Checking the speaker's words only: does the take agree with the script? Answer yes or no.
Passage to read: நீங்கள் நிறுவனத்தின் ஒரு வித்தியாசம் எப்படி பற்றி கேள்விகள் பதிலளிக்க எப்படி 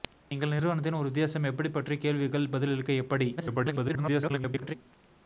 no